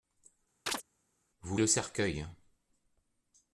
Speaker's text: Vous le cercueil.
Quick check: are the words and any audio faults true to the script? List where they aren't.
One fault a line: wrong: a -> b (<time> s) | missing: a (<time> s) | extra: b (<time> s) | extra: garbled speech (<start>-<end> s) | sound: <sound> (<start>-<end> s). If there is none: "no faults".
sound: chirp (0.7-0.8 s)